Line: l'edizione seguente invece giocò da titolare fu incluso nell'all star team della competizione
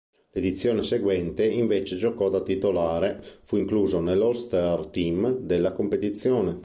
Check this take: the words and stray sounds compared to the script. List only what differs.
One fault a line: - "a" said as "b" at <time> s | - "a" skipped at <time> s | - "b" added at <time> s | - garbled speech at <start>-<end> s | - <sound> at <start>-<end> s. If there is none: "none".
none